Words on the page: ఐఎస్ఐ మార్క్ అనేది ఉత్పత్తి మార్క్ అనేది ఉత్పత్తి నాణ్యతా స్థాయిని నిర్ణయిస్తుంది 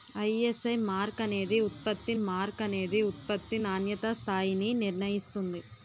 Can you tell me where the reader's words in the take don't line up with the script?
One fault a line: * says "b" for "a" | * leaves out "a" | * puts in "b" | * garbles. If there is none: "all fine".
all fine